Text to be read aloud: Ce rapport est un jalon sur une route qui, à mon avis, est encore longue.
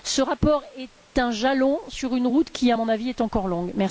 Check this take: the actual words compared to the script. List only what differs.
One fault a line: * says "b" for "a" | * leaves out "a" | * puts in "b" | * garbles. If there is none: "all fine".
all fine